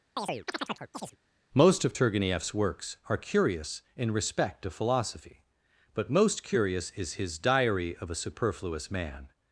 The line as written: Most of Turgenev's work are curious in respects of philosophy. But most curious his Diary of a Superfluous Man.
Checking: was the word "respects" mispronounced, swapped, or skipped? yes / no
yes